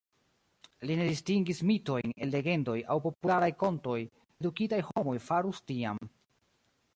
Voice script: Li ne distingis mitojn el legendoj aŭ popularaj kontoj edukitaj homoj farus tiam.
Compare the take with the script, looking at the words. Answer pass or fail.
pass